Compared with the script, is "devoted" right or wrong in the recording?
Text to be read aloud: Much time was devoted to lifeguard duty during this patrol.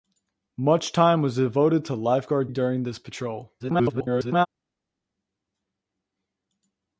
right